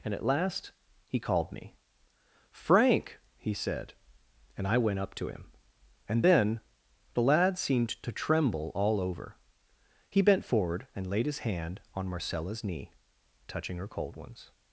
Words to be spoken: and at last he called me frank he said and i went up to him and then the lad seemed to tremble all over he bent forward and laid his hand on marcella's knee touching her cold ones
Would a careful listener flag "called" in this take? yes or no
no